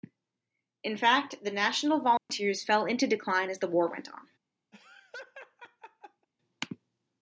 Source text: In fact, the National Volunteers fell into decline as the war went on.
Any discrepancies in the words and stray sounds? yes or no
yes